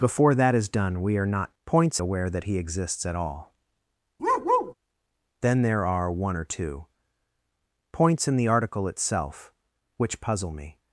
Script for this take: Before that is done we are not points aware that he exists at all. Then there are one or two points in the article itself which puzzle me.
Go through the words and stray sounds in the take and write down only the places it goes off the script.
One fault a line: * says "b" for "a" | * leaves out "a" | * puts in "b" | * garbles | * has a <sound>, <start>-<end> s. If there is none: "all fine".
* has a bark, 4.2-4.7 s